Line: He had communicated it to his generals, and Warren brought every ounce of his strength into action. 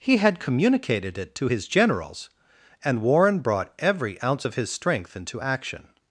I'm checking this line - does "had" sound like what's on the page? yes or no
yes